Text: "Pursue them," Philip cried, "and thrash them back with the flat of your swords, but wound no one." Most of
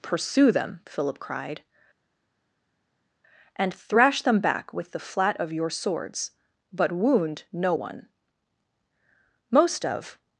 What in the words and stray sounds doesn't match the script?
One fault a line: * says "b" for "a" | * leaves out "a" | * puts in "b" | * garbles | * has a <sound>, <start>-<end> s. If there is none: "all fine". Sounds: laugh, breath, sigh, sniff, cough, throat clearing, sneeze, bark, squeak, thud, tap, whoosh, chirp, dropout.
all fine